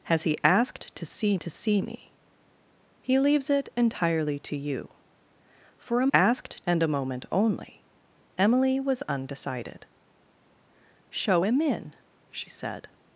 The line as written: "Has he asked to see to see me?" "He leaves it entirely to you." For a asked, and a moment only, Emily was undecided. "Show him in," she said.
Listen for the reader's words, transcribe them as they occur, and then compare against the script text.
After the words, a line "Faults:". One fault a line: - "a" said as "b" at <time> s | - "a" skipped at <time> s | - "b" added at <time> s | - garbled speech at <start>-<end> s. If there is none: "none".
"Has he asked to see to see me?" "He leaves it entirely to you." For a asked, and a moment only, Emily was undecided. "Show him in," she said.
Faults:
none